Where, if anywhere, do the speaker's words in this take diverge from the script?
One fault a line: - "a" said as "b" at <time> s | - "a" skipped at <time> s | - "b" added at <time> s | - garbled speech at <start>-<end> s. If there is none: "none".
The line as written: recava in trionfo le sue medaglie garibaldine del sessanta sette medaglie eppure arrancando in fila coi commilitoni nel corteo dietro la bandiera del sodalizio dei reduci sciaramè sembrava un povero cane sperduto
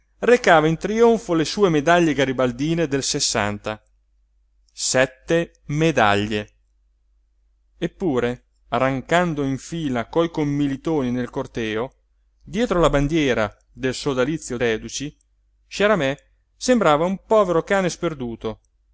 - "dei" skipped at 14.6 s